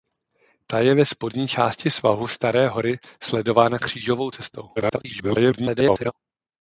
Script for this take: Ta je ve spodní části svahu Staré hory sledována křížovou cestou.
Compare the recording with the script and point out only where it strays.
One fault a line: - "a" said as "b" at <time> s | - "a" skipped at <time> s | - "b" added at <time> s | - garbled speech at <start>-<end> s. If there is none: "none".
- garbled speech at 4.8-6.1 s